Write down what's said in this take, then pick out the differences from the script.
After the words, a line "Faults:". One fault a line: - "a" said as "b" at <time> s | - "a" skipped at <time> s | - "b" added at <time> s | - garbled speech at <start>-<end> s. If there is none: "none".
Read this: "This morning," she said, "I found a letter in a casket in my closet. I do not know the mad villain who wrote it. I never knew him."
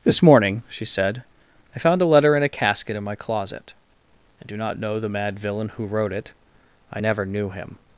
"This morning," she said, "I found a letter in a casket in my closet. I do not know the mad villain who wrote it. I never knew him."
Faults:
none